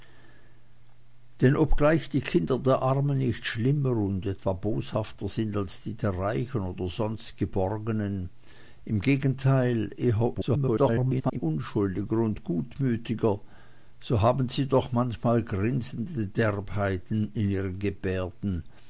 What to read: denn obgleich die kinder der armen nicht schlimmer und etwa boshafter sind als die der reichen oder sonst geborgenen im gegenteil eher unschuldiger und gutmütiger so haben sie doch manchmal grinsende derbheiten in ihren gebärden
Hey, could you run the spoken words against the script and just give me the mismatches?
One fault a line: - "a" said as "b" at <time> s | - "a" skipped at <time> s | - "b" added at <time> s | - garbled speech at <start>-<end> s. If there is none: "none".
- garbled speech at 10.3-11.4 s